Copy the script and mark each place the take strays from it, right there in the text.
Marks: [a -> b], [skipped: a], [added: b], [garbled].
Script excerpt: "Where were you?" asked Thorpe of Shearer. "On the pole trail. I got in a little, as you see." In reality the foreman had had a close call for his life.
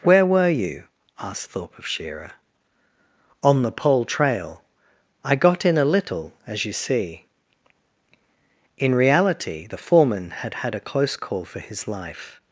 "Where were you?" asked Thorpe of Shearer. "On the pole trail. I got in a little, as you see." In reality the foreman had had a close call for his life.